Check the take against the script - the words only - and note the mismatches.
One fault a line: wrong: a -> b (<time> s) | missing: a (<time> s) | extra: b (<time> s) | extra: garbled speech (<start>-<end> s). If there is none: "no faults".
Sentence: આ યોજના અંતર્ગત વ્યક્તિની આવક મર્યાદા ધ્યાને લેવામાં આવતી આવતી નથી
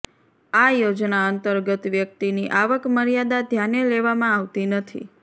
missing: આવતી (4.7 s)